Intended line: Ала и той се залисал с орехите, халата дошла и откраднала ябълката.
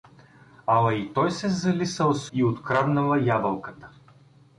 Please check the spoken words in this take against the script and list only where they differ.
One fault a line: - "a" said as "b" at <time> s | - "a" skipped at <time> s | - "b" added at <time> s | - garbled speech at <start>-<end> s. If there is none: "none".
- "орехите халата дошла" skipped at 2.3 s